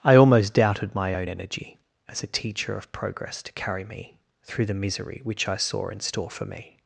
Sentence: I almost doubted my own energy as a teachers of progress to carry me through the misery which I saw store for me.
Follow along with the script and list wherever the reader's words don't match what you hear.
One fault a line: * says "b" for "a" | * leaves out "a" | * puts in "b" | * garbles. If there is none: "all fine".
* says "teacher" for "teachers"
* puts in "in"